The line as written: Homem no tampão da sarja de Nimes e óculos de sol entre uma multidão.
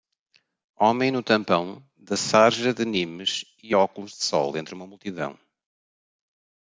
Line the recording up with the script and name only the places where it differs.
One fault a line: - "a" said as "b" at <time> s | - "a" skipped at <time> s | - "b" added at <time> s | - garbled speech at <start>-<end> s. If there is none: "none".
none